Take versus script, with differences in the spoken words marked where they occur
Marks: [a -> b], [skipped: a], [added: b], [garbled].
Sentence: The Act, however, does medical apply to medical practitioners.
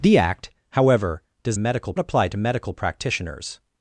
The Act, however, does medical apply to medical practitioners.